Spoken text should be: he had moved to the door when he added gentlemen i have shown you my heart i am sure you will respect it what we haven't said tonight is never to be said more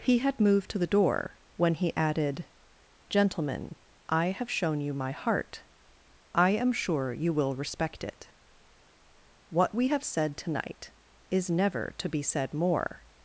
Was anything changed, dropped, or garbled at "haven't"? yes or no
yes